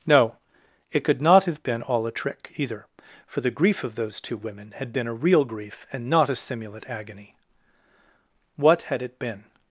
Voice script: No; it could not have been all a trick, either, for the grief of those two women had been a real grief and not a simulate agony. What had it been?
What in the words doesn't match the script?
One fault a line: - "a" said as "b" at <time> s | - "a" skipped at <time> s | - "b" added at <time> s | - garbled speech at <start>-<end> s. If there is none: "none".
none